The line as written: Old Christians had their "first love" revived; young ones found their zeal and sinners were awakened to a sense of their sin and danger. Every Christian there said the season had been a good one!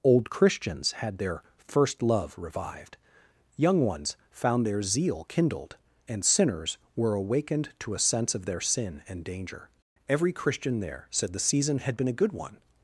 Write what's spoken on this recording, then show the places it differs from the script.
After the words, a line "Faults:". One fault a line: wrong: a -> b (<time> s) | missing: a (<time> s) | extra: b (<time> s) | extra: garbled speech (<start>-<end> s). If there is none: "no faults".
Old Christians had their "first love" revived; young ones found their zeal kindled, and sinners were awakened to a sense of their sin and danger. Every Christian there said the season had been a good one!
Faults:
extra: kindled (5.2 s)